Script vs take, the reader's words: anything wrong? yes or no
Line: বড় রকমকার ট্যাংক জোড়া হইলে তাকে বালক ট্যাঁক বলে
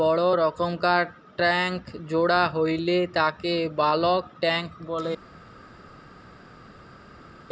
no